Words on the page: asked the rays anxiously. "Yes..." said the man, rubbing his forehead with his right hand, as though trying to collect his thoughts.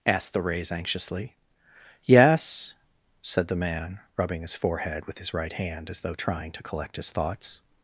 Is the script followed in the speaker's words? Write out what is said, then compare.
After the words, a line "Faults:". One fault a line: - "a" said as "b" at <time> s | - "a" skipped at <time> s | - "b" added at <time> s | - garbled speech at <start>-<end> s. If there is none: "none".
asked the rays anxiously. "Yes..." said the man, rubbing his forehead with his right hand, as though trying to collect his thoughts.
Faults:
none